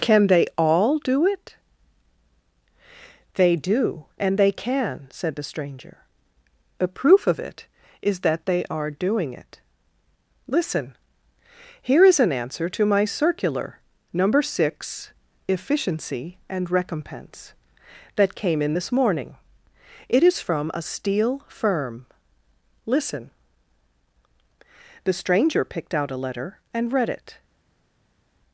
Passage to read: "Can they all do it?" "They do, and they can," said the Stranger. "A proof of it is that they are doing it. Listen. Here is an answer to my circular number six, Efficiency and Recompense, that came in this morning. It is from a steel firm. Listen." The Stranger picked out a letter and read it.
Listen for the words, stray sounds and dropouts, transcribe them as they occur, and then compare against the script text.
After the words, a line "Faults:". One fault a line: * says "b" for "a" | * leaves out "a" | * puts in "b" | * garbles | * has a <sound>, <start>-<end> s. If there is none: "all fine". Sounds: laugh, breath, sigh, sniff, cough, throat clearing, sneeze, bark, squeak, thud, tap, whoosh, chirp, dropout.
"Can they all do it?" "They do, and they can," said the Stranger. "A proof of it is that they are doing it. Listen. Here is an answer to my circular number six, Efficiency and Recompense, that came in this morning. It is from a steel firm. Listen." The Stranger picked out a letter and read it.
Faults:
all fine